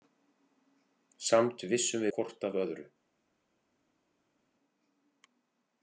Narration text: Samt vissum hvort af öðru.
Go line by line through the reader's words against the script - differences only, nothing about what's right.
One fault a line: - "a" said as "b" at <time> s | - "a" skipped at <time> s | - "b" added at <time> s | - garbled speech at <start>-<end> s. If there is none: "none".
none